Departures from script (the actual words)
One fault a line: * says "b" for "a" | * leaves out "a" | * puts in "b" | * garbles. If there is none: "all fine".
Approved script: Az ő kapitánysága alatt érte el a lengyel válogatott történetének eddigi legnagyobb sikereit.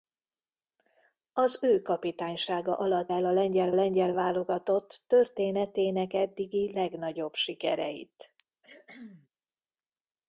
* leaves out "érte"
* puts in "lengyel"